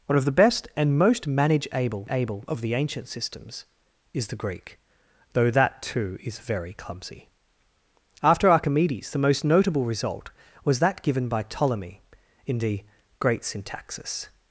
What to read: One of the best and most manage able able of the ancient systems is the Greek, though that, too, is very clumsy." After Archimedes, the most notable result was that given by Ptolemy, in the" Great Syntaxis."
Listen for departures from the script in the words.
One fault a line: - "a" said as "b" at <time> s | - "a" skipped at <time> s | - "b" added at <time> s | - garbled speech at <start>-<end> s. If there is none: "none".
none